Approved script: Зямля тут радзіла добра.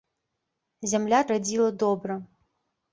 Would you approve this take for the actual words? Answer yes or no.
no